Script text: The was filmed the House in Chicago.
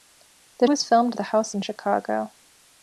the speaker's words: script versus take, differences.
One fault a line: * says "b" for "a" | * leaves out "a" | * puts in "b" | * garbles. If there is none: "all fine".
all fine